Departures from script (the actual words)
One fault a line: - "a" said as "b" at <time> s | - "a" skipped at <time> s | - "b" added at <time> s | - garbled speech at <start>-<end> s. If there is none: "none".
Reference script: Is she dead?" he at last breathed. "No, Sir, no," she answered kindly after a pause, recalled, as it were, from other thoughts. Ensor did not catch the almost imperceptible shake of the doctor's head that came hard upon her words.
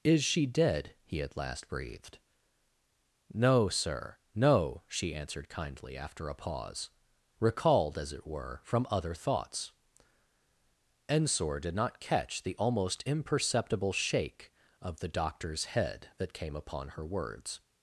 - "hard" skipped at 16.5 s